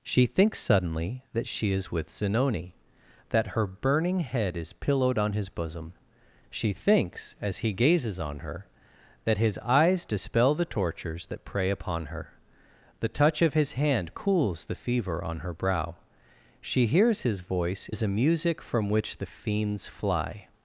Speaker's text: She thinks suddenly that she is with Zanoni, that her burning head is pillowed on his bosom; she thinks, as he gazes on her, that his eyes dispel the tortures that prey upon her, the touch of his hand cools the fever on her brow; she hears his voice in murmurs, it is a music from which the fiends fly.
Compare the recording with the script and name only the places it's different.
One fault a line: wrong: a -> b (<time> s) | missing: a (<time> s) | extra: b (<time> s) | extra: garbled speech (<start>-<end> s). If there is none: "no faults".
missing: in murmurs it (17.9 s)